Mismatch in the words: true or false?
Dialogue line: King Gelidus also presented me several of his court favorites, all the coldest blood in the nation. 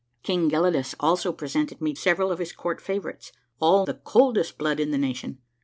false